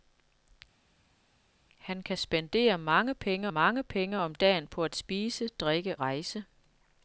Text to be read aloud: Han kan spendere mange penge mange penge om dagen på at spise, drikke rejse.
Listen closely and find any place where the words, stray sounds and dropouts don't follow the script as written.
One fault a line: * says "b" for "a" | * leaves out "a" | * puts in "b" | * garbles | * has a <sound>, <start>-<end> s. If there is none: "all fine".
all fine